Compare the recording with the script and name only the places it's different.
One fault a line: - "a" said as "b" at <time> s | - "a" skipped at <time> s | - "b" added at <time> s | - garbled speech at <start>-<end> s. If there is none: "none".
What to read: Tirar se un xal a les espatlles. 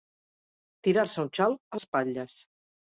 - "les" skipped at 1.8 s